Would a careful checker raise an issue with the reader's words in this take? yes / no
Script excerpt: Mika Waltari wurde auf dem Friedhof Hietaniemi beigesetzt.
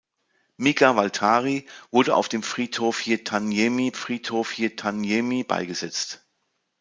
yes